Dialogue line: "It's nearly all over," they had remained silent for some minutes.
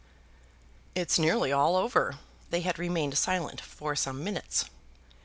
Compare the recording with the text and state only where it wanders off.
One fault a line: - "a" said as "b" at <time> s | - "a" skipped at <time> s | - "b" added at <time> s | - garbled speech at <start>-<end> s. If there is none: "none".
none